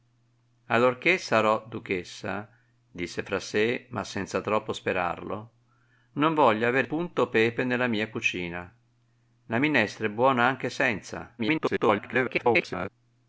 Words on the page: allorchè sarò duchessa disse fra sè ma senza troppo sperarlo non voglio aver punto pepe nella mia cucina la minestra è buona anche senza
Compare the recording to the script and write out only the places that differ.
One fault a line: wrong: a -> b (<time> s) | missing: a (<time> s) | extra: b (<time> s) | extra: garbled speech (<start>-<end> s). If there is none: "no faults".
extra: garbled speech (11.4-12.9 s)